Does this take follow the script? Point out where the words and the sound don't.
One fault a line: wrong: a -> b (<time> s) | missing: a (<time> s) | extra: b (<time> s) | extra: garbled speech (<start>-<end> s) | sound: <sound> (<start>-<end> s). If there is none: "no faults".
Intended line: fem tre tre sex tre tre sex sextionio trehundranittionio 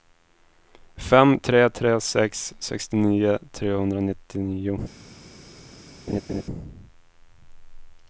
missing: tre tre sex (2.4 s)
sound: laugh (6.1-6.4 s)